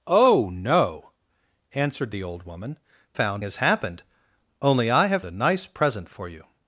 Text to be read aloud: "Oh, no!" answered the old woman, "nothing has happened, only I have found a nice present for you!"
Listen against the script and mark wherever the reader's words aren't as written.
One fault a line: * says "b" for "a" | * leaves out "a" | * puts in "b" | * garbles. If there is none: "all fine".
* says "found" for "nothing"
* leaves out "found"